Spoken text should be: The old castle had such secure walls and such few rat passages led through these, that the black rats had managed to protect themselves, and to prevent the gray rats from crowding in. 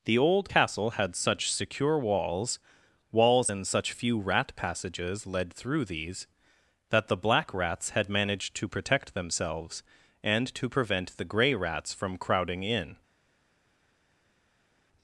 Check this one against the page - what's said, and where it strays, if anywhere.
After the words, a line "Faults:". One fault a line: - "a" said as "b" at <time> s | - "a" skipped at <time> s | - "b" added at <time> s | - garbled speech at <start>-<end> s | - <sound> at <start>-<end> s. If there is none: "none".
The old castle had such secure walls walls and such few rat passages led through these, that the black rats had managed to protect themselves, and to prevent the gray rats from crowding in.
Faults:
- "walls" added at 3.1 s